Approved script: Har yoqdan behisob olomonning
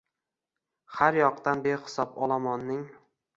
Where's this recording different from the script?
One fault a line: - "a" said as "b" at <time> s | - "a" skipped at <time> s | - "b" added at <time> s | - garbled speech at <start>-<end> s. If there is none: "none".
none